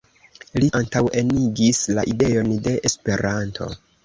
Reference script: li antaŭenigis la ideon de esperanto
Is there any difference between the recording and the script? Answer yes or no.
no